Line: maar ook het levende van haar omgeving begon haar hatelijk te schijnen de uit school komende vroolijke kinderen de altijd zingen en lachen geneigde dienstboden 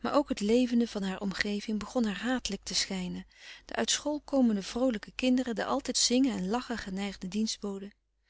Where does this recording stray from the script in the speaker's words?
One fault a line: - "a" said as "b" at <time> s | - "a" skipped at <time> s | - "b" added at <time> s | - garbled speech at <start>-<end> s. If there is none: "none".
none